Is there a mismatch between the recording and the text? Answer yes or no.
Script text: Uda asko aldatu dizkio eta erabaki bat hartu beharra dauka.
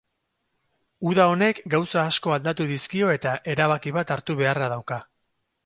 yes